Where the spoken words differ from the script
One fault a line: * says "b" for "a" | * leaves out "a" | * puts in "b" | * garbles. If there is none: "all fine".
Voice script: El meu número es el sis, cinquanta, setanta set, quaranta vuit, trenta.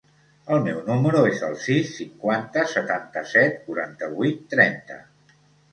all fine